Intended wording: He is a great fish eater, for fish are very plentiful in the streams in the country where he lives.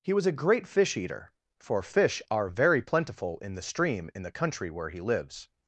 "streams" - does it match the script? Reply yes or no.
no